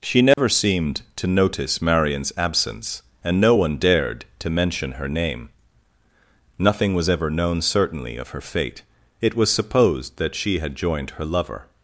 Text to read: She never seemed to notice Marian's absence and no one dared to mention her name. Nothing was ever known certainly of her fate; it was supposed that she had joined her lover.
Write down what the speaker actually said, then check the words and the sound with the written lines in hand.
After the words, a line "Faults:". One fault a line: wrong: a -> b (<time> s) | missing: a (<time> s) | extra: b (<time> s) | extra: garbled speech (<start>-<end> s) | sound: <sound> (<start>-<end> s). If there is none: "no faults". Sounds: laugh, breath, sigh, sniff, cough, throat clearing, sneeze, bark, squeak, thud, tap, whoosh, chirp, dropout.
She never seemed to notice Marian's absence and no one dared to mention her name. Nothing was ever known certainly of her fate; it was supposed that she had joined her lover.
Faults:
sound: dropout (0.3-0.4 s)